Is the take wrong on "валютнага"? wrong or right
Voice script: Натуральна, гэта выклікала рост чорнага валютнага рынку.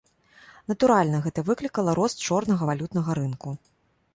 right